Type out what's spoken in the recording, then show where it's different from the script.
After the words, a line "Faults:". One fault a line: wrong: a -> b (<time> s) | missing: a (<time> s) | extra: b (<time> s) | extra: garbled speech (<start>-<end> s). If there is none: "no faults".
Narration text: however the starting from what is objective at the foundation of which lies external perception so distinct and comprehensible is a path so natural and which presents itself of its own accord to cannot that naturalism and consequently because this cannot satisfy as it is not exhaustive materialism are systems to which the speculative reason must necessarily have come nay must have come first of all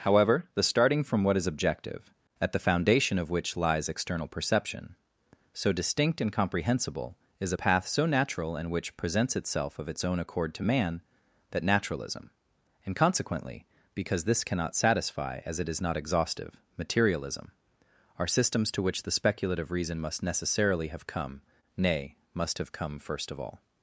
however the starting from what is objective at the foundation of which lies external perception so distinct and comprehensible is a path so natural and which presents itself of its own accord to man that naturalism and consequently because this cannot satisfy as it is not exhaustive materialism are systems to which the speculative reason must necessarily have come nay must have come first of all
Faults:
wrong: cannot -> man (10.6 s)